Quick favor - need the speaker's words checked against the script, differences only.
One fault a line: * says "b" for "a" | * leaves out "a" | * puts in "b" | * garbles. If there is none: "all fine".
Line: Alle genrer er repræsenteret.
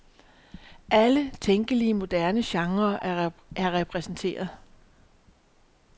* puts in "tænkelige moderne"